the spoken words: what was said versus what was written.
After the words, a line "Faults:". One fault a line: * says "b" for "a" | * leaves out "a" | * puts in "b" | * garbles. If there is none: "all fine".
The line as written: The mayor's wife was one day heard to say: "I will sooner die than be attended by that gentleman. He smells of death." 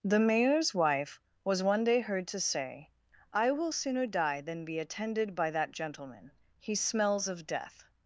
The mayor's wife was one day heard to say: "I will sooner die than be attended by that gentleman. He smells of death."
Faults:
all fine